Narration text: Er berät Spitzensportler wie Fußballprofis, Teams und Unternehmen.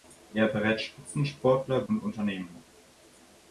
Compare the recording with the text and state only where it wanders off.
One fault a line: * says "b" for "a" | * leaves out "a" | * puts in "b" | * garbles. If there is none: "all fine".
* leaves out "wie Fußballprofis Teams"